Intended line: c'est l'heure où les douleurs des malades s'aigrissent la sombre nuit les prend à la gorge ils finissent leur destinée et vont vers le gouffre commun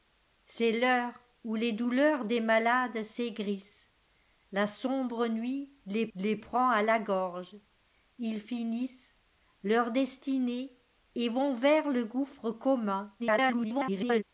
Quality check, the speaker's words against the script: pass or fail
fail